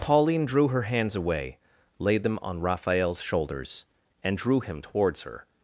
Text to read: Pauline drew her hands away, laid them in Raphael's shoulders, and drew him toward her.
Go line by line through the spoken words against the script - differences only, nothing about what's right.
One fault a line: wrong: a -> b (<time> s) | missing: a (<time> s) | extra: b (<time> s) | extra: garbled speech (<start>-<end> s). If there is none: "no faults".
wrong: in -> on (2.4 s)
wrong: toward -> towards (4.8 s)